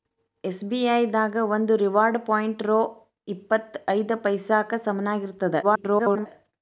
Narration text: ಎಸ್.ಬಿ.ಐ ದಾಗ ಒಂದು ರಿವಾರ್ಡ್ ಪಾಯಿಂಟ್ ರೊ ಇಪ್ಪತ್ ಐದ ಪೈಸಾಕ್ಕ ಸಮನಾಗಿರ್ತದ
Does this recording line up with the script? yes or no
no